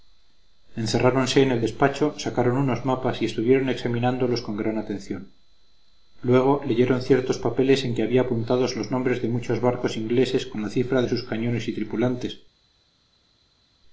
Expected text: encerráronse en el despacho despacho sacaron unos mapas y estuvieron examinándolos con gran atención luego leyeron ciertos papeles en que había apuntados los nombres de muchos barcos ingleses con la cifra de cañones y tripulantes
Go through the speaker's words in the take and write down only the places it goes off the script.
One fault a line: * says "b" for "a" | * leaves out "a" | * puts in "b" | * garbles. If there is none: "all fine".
* leaves out "despacho"
* puts in "sus"